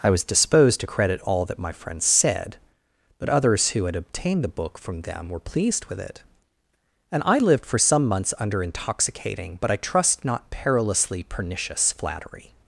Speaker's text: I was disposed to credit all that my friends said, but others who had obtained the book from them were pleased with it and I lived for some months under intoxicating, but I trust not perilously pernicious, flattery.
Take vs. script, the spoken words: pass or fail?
pass